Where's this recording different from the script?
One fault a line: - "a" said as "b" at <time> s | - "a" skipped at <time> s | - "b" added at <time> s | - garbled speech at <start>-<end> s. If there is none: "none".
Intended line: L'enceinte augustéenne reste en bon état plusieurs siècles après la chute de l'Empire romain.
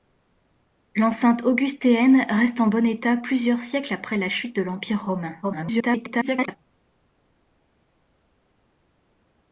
- garbled speech at 5.4-6.6 s